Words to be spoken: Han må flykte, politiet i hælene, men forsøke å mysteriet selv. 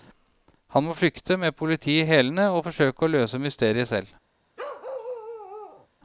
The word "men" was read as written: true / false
false